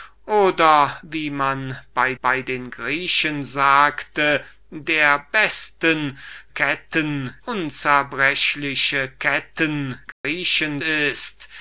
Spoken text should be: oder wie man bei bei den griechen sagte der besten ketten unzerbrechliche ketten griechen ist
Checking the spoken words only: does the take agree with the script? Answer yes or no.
yes